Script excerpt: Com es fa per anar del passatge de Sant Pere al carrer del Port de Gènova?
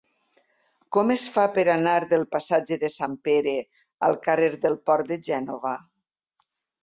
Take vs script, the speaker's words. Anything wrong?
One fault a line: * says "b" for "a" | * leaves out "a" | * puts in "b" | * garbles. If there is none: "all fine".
all fine